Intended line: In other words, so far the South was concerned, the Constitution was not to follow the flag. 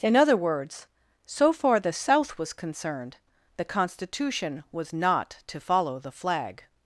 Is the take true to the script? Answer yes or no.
yes